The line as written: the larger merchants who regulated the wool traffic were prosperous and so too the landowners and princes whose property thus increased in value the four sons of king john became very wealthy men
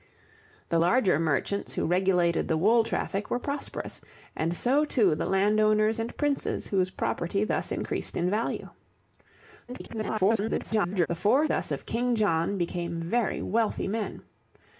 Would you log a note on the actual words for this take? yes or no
yes